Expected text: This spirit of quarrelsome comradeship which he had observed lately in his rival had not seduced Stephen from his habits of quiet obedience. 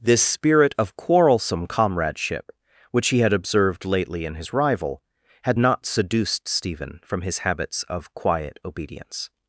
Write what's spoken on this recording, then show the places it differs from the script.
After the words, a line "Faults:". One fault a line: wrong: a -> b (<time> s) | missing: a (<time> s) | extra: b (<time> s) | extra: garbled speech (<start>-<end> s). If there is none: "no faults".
This spirit of quarrelsome comradeship which he had observed lately in his rival had not seduced Stephen from his habits of quiet obedience.
Faults:
no faults